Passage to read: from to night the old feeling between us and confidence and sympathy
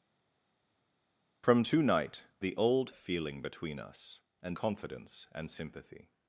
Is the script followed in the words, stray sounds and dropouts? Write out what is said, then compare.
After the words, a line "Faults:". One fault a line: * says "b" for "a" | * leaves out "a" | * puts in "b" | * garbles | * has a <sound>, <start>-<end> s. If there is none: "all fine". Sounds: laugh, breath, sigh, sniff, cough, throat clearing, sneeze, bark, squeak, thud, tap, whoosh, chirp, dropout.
from to night the old feeling between us and confidence and sympathy
Faults:
all fine